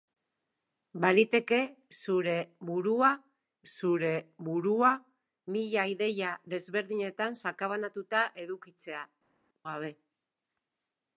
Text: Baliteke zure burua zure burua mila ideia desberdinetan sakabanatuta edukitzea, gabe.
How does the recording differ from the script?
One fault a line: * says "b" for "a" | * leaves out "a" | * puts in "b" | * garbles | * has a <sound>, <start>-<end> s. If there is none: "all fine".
all fine